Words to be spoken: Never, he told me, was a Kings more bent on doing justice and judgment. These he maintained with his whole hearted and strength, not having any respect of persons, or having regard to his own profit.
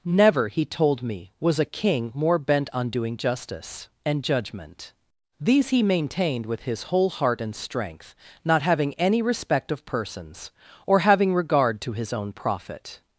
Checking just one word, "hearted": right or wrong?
wrong